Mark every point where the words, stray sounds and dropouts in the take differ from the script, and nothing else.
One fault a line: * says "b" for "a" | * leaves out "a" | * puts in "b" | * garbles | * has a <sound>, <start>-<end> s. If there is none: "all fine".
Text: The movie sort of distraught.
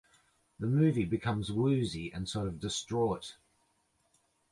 * puts in "becomes woozy and"